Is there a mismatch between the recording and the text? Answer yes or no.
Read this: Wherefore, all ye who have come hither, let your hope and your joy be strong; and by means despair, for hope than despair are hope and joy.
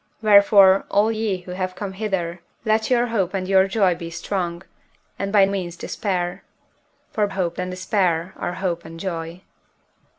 no